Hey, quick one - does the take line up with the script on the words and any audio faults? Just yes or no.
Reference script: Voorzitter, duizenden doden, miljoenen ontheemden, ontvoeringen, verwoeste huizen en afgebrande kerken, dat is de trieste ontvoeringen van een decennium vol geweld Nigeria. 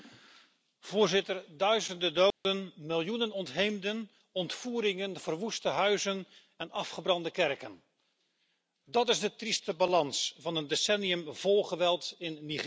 no